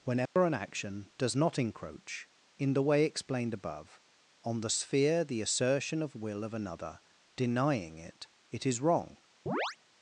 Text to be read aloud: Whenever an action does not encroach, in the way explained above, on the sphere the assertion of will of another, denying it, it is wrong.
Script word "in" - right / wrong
right